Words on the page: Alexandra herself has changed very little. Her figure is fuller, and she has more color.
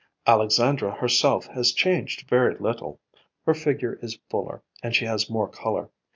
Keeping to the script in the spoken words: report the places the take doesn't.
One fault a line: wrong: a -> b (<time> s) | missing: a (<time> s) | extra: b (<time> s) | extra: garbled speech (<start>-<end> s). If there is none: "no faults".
no faults